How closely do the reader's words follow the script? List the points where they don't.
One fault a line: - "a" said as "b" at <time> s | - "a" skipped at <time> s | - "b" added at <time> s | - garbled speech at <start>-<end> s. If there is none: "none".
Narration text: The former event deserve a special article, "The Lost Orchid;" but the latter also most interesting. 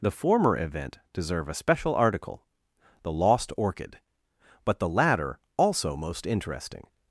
none